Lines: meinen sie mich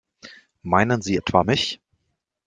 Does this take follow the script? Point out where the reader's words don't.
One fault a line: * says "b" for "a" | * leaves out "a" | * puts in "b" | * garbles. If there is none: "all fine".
* puts in "etwa"